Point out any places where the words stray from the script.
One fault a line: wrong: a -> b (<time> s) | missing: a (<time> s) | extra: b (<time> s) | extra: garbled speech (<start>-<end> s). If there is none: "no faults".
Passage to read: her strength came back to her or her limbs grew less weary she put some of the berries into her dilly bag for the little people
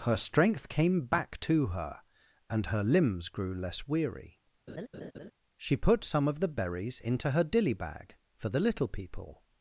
wrong: or -> and (2.5 s)